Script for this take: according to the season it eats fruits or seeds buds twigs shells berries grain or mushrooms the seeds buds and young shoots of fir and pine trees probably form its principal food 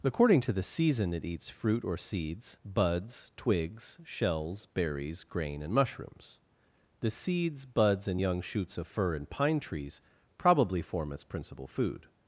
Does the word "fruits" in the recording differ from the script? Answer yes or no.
yes